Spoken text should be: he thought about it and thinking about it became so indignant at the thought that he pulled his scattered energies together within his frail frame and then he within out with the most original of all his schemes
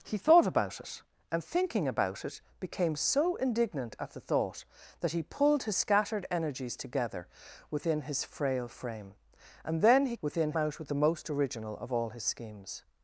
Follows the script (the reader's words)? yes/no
yes